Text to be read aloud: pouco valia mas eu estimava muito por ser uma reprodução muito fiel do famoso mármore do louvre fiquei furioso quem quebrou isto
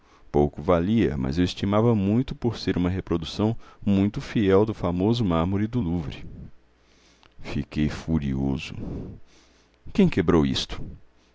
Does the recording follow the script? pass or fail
pass